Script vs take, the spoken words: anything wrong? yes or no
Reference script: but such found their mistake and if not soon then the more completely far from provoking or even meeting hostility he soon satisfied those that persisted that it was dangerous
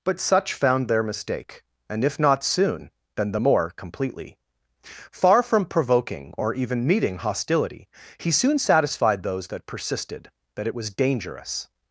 no